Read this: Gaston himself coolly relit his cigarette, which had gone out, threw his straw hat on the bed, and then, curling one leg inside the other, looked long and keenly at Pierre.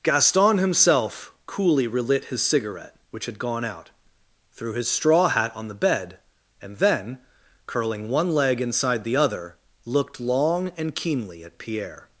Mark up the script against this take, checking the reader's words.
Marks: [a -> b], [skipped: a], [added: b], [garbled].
Gaston himself coolly relit his cigarette, which had gone out, threw his straw hat on the bed, and then, curling one leg inside the other, looked long and keenly at Pierre.